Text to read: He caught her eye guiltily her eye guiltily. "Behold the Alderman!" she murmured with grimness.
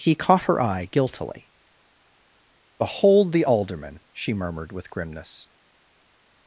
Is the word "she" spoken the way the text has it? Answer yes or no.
yes